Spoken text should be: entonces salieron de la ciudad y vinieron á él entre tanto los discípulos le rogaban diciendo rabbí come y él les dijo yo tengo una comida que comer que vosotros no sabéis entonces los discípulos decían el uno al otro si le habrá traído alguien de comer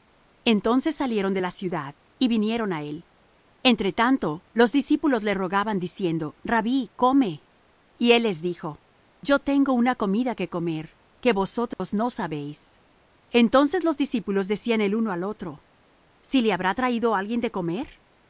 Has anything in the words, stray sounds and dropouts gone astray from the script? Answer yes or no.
yes